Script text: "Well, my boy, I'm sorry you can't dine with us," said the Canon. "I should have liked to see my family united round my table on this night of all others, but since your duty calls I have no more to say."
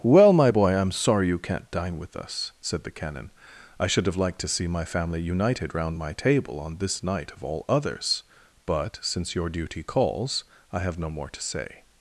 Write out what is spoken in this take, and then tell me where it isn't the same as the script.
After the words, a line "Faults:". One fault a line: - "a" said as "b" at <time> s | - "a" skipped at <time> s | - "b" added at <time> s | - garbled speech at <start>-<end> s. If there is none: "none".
"Well, my boy, I'm sorry you can't dine with us," said the Canon. "I should have liked to see my family united round my table on this night of all others, but since your duty calls I have no more to say."
Faults:
none